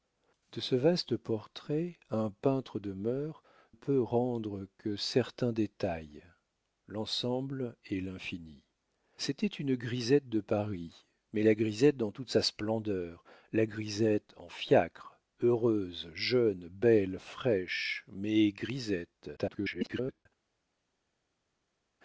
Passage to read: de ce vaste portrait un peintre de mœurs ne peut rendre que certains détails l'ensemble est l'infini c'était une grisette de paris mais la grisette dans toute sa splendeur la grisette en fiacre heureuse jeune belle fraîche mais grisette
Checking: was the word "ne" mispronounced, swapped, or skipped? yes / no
yes